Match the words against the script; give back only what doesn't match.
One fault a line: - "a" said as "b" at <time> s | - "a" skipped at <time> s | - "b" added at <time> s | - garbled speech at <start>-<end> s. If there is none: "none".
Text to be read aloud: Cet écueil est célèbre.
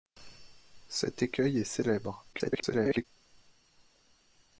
- garbled speech at 2.3-3.0 s